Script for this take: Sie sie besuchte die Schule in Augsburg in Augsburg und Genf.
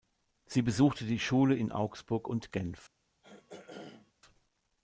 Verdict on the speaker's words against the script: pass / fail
fail